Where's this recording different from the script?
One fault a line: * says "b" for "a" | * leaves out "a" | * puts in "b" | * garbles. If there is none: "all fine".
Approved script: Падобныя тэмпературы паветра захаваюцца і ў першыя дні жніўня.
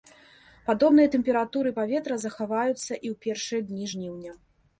all fine